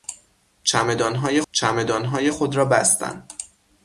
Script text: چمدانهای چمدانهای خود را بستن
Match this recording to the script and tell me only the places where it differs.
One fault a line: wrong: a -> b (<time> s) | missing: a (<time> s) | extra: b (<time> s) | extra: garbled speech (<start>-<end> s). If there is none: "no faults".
no faults